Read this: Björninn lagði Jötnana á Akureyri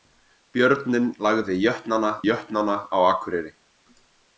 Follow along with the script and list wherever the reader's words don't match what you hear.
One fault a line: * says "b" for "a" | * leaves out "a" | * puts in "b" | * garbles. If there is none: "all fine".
* puts in "Jötnana"